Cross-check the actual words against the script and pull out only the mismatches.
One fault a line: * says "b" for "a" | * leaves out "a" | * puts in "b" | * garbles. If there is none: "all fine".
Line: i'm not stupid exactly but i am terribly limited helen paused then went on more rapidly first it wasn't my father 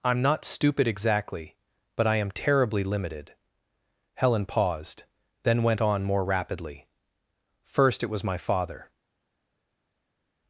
* says "was" for "wasn't"